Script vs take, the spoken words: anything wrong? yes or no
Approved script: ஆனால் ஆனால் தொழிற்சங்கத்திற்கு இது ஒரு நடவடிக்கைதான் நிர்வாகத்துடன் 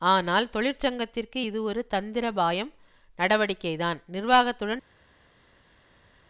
yes